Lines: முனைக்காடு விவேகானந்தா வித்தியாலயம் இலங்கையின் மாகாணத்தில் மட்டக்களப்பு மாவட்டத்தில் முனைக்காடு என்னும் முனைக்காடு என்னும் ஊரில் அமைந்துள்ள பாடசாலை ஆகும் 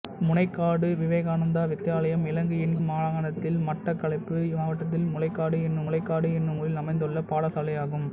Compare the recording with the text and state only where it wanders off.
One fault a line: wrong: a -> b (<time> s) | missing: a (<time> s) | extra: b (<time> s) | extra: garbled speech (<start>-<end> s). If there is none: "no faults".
no faults